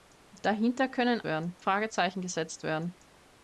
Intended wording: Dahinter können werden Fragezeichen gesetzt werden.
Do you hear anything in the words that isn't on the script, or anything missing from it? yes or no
no